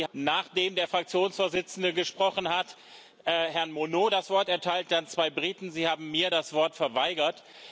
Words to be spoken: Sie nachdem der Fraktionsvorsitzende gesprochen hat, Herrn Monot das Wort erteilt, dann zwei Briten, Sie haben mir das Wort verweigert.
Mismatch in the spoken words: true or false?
false